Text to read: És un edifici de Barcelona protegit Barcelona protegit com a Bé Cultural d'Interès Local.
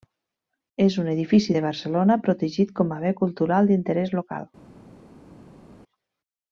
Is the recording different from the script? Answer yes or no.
yes